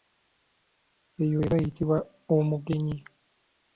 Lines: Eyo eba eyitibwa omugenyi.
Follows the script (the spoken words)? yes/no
yes